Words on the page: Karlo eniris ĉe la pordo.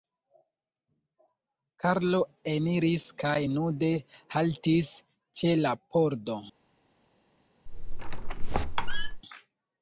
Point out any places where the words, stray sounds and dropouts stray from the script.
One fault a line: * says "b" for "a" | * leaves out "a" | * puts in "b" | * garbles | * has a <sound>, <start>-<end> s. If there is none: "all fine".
* puts in "kaj nude haltis"
* has a squeak, 7.7-9.2 s